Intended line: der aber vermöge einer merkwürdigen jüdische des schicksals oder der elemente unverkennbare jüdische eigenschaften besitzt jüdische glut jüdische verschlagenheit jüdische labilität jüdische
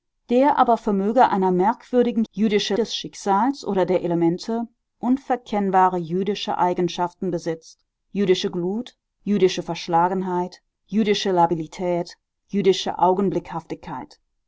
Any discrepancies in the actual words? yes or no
no